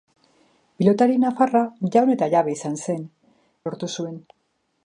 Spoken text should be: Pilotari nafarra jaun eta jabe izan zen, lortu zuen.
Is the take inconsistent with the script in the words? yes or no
no